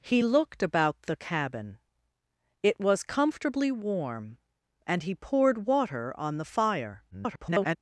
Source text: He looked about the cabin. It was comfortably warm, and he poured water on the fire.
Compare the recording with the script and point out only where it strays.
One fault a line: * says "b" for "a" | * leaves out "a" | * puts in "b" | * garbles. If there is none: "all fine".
* garbles